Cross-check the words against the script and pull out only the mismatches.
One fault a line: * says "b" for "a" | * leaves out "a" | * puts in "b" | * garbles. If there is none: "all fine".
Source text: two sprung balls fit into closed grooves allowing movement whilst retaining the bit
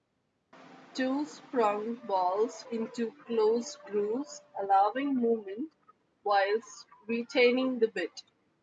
* leaves out "fit"